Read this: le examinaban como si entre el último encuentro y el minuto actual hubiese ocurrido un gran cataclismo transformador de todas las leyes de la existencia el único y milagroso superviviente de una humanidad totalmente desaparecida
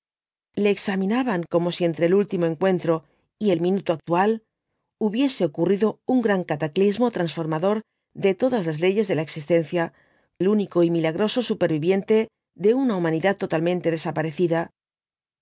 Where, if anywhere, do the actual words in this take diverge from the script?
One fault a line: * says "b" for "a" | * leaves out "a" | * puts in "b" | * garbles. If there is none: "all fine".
all fine